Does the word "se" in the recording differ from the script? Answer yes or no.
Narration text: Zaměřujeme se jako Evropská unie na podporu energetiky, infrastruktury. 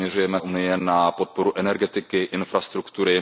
yes